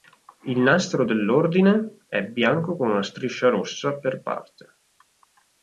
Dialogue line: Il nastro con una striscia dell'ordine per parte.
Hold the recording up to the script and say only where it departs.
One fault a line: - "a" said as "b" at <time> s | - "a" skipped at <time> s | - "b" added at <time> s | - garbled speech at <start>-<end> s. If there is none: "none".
- "dell'ordine è bianco" added at 1.0 s
- "dell'ordine" said as "rossa" at 3.5 s